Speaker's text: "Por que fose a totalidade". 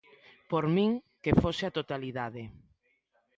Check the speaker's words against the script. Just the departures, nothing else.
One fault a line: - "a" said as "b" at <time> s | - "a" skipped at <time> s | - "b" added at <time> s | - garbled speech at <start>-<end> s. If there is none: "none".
- "min" added at 0.8 s